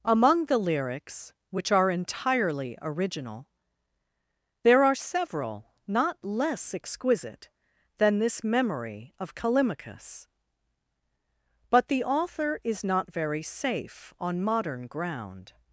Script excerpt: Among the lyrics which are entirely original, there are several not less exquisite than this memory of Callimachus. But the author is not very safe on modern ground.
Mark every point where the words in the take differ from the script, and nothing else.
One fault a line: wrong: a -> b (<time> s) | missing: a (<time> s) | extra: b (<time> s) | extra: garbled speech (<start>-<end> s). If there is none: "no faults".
no faults